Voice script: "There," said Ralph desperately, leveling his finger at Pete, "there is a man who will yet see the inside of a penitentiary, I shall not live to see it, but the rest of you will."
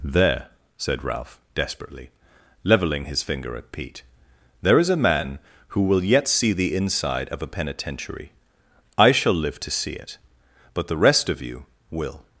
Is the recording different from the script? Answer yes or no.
yes